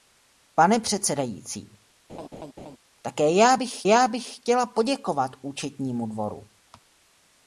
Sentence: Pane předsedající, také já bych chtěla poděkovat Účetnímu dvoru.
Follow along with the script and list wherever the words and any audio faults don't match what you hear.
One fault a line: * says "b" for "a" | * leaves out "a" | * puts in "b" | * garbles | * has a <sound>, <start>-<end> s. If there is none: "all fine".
* has a laugh, 2.1-2.8 s
* puts in "já bych"